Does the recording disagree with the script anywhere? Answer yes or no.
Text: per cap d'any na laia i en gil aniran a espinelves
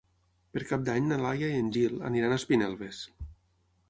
no